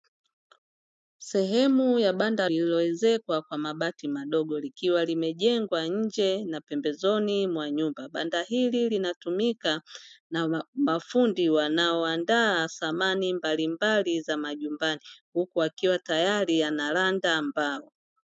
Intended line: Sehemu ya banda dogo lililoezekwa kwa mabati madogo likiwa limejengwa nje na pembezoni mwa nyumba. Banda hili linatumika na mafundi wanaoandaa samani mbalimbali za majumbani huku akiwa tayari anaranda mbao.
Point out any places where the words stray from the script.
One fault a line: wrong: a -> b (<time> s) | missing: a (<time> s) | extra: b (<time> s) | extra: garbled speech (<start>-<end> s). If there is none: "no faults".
missing: dogo (2.5 s)